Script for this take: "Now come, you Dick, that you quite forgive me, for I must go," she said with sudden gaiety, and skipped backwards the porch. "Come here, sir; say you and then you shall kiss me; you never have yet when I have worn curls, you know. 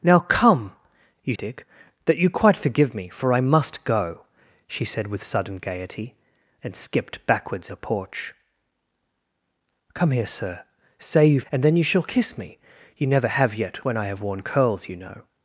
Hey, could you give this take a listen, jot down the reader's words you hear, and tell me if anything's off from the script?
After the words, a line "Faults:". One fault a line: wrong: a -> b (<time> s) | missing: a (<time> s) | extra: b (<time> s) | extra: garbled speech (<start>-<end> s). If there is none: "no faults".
"Now come, you Dick, that you quite forgive me, for I must go," she said with sudden gaiety, and skipped backwards the porch. "Come here, sir; say you and then you shall kiss me; you never have yet when I have worn curls, you know.
Faults:
no faults